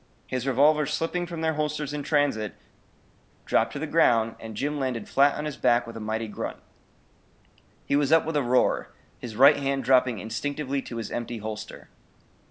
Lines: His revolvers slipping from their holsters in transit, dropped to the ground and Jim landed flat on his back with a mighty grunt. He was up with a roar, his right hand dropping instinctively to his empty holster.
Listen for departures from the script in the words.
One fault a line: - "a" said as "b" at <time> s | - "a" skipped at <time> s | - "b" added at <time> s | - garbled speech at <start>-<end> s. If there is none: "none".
none